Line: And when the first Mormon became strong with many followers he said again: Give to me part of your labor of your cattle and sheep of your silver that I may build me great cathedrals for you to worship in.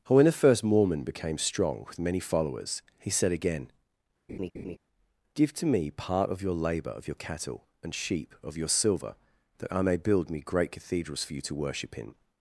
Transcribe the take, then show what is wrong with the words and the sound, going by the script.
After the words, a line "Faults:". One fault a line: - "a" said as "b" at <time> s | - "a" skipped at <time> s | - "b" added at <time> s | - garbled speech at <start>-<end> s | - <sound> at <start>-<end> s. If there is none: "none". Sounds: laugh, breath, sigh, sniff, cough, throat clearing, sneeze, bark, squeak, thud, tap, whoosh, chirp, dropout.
And when the first Mormon became strong with many followers he said again: Give to me part of your labor of your cattle and sheep of your silver that I may build me great cathedrals for you to worship in.
Faults:
- laugh at 4.3-4.8 s